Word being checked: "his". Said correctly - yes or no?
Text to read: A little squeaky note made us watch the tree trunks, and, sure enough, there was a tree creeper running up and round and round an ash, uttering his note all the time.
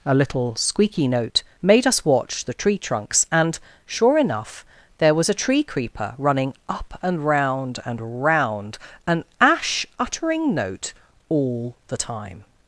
no